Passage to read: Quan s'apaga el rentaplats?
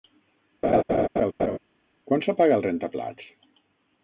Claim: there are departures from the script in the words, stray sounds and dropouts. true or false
true